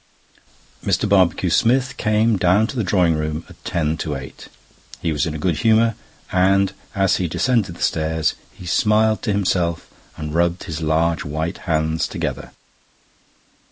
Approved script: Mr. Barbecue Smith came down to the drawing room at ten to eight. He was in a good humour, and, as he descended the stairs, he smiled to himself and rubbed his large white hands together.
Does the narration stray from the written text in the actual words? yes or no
no